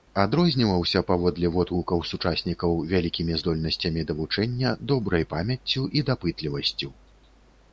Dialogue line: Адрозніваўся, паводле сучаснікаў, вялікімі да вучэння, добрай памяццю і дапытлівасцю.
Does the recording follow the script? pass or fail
fail